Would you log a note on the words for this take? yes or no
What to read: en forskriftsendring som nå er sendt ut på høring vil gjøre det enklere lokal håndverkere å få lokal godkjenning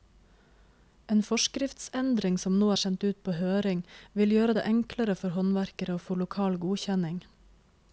yes